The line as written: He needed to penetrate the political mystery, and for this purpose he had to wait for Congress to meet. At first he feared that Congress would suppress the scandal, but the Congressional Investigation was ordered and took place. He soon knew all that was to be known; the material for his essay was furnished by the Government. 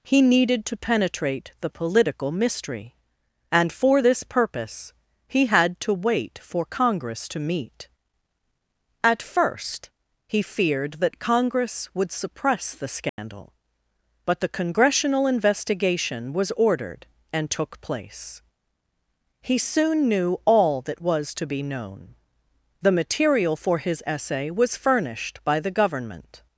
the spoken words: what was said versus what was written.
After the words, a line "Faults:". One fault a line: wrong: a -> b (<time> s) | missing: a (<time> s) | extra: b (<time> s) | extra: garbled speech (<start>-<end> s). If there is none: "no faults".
He needed to penetrate the political mystery, and for this purpose he had to wait for Congress to meet. At first he feared that Congress would suppress the scandal, but the Congressional Investigation was ordered and took place. He soon knew all that was to be known; the material for his essay was furnished by the Government.
Faults:
no faults